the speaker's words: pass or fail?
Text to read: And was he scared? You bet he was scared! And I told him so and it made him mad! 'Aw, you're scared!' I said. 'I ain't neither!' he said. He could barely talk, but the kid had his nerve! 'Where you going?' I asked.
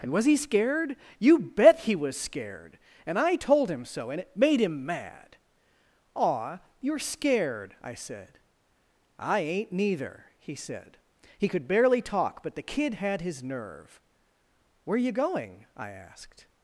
pass